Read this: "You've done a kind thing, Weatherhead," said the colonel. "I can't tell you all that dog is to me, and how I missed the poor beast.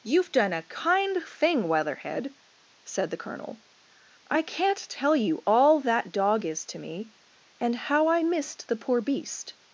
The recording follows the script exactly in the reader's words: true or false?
true